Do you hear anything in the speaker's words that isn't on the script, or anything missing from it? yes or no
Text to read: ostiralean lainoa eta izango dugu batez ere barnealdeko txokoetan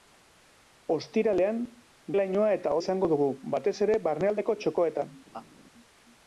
no